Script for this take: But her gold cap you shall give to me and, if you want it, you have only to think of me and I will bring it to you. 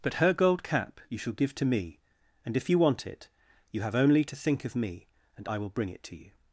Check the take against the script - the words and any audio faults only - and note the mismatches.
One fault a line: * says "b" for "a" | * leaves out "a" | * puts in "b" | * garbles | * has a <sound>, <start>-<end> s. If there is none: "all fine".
all fine